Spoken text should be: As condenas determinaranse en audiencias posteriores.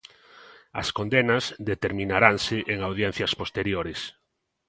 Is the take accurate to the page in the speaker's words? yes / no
yes